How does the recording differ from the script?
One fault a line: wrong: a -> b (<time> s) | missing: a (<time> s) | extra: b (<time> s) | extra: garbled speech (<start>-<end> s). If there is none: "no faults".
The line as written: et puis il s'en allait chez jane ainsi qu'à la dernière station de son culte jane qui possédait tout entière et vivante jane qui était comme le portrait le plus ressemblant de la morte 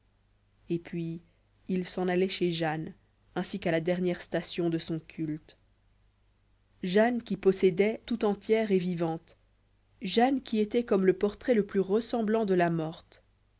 no faults